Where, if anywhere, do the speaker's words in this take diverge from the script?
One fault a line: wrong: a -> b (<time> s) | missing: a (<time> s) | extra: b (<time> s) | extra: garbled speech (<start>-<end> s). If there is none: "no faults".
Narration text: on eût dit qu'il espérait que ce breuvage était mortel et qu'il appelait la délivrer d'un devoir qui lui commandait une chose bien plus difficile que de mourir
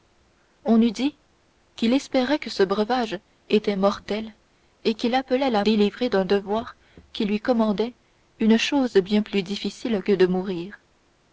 no faults